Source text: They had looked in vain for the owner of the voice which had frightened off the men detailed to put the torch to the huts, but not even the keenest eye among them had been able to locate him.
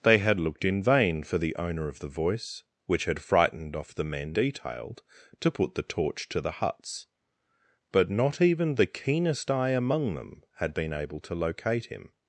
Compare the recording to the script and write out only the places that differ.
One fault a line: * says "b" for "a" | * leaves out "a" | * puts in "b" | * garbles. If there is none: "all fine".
all fine